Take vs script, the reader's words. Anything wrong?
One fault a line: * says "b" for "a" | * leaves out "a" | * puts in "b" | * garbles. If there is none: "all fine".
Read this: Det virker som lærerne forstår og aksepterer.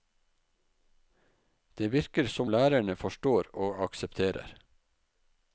all fine